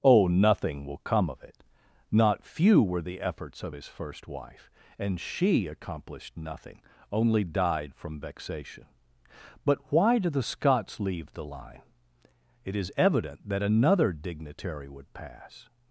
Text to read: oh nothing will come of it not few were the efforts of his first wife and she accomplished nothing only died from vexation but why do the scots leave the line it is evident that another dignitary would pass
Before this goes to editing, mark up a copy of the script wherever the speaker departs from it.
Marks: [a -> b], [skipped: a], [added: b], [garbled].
oh nothing will come of it not few were the efforts of his first wife and she accomplished nothing only died from vexation but why do the scots leave the line it is evident that another dignitary would pass